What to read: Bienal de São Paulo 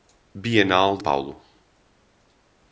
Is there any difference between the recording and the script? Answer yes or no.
yes